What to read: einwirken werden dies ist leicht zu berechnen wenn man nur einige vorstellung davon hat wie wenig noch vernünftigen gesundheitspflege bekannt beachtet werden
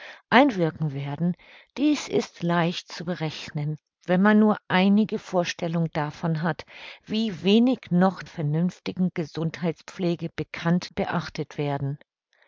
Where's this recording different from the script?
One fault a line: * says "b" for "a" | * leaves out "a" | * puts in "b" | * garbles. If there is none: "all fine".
all fine